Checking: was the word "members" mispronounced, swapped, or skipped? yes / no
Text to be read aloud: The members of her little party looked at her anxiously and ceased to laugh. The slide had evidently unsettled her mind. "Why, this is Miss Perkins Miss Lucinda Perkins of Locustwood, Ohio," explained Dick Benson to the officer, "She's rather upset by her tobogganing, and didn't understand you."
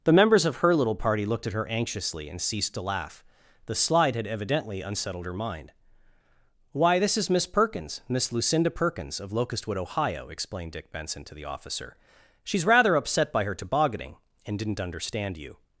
no